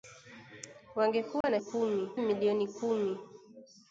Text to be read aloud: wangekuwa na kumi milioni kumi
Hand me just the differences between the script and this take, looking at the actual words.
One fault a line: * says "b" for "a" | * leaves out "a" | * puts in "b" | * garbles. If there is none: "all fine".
all fine